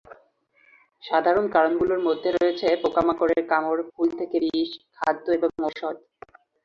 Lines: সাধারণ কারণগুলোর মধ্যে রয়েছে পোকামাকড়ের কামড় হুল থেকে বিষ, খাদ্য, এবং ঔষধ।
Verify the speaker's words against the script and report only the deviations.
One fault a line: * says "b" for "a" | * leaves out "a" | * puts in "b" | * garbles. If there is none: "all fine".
all fine